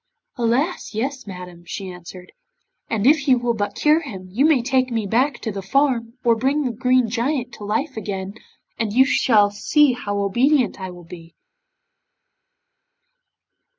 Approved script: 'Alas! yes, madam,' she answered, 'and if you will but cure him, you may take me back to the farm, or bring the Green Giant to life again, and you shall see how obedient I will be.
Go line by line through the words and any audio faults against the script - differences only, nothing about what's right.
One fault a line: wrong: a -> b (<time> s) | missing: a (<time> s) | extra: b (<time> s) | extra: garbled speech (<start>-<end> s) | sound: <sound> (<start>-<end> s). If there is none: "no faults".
no faults